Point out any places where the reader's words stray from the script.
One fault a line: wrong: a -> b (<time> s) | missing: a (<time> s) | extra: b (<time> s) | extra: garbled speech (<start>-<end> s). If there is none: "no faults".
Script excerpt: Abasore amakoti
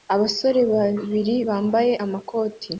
extra: babiri bambaye (0.7 s)